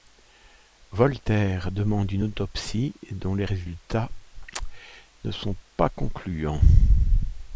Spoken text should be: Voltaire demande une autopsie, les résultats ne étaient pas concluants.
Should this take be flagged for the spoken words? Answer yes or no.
yes